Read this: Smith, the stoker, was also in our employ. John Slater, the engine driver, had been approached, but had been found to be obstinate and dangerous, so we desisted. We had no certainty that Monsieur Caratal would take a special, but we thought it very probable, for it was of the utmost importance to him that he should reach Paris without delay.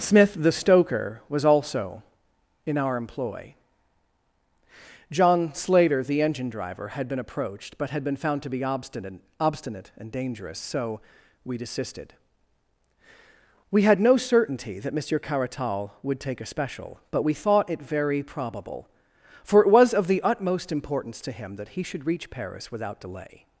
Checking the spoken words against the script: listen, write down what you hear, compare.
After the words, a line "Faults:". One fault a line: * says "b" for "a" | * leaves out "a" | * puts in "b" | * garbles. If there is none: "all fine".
Smith, the stoker, was also in our employ. John Slater, the engine driver, had been approached, but had been found to be obstinate obstinate and dangerous, so we desisted. We had no certainty that Monsieur Caratal would take a special, but we thought it very probable, for it was of the utmost importance to him that he should reach Paris without delay.
Faults:
* puts in "obstinate"